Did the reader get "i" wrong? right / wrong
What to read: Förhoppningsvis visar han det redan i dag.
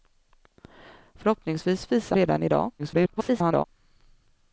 right